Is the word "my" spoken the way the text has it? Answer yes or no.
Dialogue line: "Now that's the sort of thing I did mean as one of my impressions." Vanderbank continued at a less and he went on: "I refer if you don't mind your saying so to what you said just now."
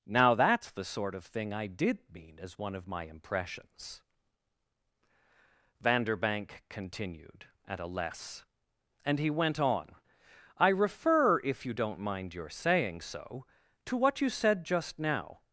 yes